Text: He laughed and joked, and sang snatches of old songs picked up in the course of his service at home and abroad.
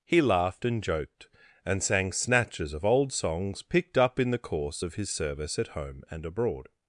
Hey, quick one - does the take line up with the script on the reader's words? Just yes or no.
yes